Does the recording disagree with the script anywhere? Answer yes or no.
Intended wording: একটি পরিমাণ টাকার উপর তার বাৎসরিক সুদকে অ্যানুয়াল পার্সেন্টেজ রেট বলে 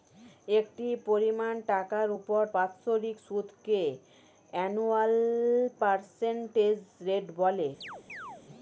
yes